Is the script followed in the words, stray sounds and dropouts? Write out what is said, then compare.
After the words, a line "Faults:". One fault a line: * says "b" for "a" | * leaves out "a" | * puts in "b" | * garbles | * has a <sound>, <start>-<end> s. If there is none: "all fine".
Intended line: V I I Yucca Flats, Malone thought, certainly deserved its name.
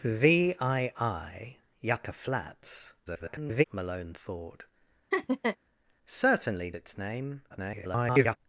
V I I Yucca Flats, [garbled] Malone thought, certainly its name. [garbled]
Faults:
* garbles
* has a laugh, 5.1-5.6 s
* leaves out "deserved"
* garbles